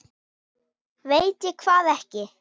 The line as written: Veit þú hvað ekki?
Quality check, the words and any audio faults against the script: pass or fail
fail